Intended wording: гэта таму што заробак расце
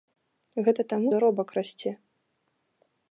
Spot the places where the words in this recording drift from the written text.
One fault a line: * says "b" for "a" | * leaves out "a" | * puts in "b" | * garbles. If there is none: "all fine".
* leaves out "што"